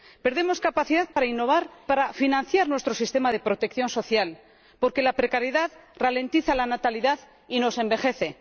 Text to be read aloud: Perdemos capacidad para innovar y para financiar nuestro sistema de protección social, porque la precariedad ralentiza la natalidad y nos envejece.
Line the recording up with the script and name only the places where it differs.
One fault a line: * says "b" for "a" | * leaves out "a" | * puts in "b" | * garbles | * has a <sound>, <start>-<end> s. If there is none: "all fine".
* has a dropout, 1.1-1.2 s
* leaves out "y"